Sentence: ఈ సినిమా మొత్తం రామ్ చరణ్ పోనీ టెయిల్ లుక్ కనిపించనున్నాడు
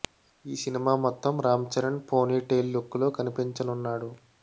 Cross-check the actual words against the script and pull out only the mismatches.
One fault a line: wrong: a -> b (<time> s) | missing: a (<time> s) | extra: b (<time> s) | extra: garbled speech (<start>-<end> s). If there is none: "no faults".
extra: లో (3.0 s)